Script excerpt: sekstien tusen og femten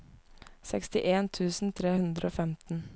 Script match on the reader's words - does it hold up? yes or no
no